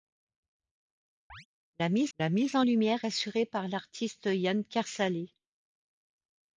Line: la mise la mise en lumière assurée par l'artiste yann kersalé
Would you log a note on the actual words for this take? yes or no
no